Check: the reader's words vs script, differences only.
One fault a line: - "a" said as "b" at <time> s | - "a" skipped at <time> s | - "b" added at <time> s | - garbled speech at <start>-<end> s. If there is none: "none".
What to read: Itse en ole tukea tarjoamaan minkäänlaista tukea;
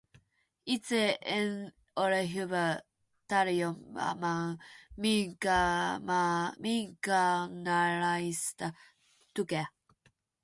- "tukea" said as "hyvä" at 2.3 s